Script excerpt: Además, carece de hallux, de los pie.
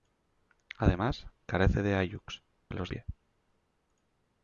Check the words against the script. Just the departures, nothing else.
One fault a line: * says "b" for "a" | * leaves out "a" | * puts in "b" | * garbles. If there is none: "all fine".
all fine